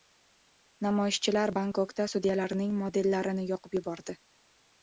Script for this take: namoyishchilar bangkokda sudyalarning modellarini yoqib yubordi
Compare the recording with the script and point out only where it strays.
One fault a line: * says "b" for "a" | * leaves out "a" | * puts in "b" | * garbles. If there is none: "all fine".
all fine